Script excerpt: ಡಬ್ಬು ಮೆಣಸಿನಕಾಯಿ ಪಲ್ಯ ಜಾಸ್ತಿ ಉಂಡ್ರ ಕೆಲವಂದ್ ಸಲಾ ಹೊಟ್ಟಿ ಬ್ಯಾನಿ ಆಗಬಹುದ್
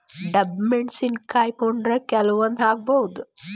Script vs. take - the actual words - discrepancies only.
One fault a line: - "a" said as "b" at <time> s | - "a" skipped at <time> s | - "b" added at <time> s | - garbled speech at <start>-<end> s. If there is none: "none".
- "ಪಲ್ಯ ಜಾಸ್ತಿ" skipped at 1.5 s
- "ಸಲಾ ಹೊಟ್ಟಿ ಬ್ಯಾನಿ" skipped at 2.6 s